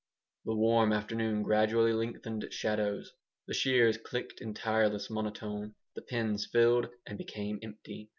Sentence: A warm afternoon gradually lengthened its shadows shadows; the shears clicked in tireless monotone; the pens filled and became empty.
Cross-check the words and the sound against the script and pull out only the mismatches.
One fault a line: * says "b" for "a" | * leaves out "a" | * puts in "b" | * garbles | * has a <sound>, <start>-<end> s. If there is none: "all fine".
* says "The" for "A"
* leaves out "shadows"